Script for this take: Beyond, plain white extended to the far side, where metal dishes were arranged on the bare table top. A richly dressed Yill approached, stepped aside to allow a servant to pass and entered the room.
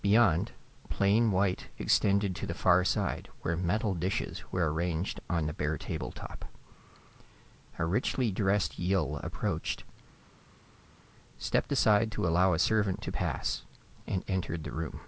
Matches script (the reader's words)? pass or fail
pass